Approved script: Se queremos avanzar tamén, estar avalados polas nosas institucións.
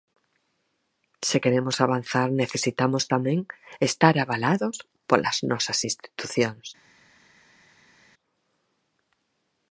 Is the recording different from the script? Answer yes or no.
yes